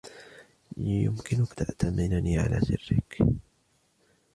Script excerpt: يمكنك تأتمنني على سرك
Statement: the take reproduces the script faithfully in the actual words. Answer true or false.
true